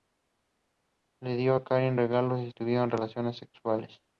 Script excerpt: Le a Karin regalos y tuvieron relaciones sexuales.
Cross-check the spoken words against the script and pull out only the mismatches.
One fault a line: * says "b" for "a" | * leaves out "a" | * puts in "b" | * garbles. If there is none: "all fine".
* puts in "dio"